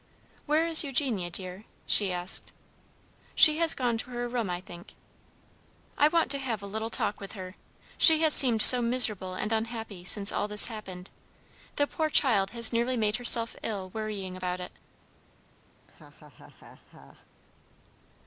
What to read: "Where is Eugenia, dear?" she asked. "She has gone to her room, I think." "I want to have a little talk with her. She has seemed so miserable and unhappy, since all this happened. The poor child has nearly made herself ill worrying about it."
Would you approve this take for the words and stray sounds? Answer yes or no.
no